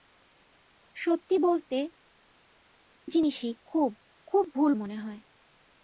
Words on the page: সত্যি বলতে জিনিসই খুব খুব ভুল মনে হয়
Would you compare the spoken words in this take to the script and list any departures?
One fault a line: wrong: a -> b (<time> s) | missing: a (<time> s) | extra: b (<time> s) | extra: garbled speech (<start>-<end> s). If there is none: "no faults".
no faults